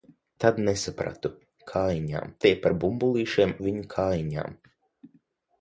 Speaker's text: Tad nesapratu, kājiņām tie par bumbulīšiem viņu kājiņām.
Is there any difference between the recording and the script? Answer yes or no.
no